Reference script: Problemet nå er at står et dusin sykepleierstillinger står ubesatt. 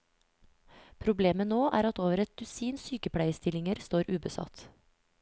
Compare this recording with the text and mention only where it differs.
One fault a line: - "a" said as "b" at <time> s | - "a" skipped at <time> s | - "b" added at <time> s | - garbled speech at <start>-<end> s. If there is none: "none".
- "står" said as "over" at 2.0 s